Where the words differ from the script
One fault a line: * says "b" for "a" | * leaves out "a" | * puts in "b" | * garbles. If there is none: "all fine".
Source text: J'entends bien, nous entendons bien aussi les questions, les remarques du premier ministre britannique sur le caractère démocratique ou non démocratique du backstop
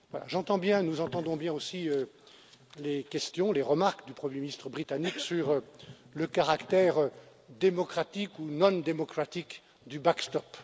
all fine